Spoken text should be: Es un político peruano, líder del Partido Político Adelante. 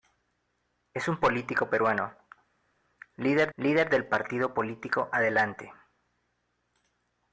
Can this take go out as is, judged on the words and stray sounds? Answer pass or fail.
fail